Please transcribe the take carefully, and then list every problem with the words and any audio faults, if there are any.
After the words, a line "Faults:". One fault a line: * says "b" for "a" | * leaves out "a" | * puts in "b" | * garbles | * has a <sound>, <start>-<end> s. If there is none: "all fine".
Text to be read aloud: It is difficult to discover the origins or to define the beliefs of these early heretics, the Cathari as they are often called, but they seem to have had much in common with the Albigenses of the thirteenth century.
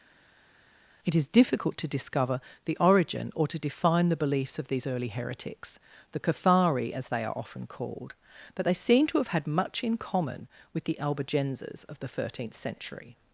It is difficult to discover the origin or to define the beliefs of these early heretics, the Cathari as they are often called, but they seem to have had much in common with the Albigenses of the thirteenth century.
Faults:
* says "origin" for "origins"